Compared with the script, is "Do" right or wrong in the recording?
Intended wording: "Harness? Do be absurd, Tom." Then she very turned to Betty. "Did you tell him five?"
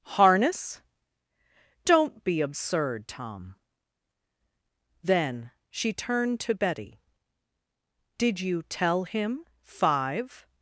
wrong